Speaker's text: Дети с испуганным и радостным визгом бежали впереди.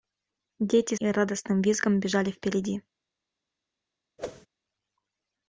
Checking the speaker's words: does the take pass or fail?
fail